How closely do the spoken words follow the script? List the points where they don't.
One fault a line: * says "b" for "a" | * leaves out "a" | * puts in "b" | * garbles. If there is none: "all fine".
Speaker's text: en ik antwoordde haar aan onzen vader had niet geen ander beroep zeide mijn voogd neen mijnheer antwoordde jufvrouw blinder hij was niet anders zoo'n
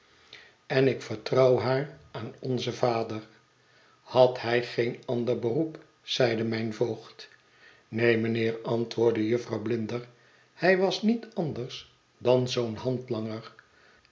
* says "vertrouw" for "antwoordde"
* says "hij" for "niet"
* puts in "dan"